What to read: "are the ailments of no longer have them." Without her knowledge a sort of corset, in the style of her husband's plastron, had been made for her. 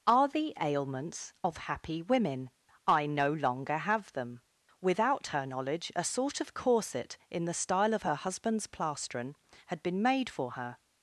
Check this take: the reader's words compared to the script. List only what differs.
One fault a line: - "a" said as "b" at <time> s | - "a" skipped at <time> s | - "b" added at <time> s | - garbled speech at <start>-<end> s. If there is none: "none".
- "happy women I" added at 1.6 s